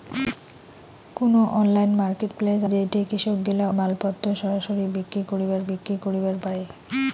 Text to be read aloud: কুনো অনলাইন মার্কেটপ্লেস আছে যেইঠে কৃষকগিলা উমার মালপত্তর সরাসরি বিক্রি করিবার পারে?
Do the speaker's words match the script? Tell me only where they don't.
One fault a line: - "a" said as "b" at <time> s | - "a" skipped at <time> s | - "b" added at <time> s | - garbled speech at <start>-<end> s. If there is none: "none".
- "আছে" skipped at 2.6 s
- "উমার" skipped at 3.7 s
- "বিক্রি করিবার" added at 5.7 s